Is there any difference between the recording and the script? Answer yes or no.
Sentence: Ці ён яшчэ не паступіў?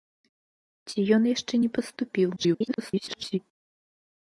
yes